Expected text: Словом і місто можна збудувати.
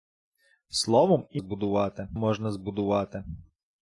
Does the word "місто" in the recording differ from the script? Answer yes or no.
yes